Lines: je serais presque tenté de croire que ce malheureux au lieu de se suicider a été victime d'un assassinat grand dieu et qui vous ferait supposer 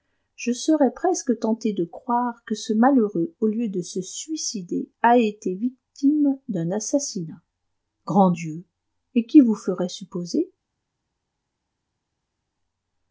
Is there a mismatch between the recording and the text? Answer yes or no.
no